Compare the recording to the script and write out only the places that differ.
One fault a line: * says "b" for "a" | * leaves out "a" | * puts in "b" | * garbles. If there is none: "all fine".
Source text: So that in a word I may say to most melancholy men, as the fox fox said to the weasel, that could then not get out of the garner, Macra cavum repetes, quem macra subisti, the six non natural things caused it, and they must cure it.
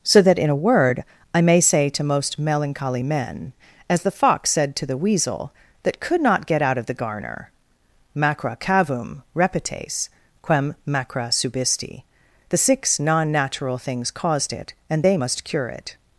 * leaves out "fox"
* leaves out "then"